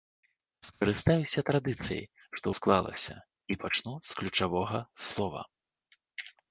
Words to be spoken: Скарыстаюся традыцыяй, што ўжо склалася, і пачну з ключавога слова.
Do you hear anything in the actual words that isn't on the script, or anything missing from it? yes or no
yes